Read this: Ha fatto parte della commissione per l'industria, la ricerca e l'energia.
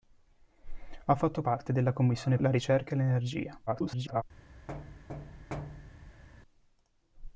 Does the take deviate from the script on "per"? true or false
true